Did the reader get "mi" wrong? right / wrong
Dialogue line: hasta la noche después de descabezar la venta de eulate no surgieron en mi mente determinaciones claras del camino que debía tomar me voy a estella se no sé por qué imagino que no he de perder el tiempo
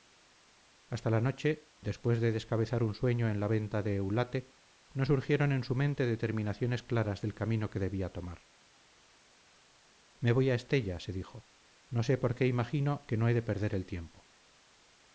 wrong